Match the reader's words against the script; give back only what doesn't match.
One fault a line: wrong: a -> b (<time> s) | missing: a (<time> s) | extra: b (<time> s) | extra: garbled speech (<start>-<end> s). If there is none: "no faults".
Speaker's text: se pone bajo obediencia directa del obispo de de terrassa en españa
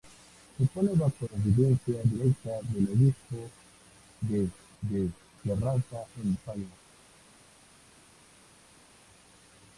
no faults